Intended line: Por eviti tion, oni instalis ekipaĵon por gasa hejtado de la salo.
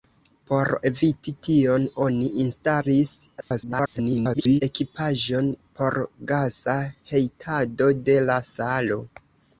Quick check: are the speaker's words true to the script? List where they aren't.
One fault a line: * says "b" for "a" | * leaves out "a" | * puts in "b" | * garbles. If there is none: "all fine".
* garbles